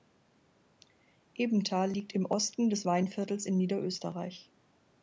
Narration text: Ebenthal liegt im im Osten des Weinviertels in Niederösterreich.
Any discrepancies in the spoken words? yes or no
yes